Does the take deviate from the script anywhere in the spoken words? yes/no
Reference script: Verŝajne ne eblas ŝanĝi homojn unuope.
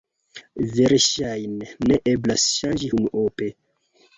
yes